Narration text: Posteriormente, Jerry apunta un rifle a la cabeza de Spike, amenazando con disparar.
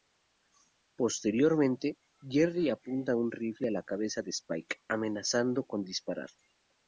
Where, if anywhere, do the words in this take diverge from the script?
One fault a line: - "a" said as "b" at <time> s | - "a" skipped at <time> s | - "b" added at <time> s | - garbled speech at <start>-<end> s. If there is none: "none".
none